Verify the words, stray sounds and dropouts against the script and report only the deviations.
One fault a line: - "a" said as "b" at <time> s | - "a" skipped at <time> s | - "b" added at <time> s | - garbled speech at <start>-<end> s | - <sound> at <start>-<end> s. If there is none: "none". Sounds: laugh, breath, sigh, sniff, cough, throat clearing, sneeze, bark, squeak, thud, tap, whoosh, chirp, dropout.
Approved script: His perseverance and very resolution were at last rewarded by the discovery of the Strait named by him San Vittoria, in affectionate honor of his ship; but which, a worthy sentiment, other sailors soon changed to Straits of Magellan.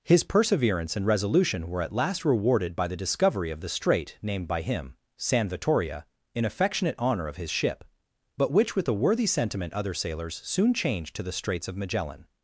- "very" skipped at 1.1 s
- "with" added at 8.8 s
- "the" added at 11.2 s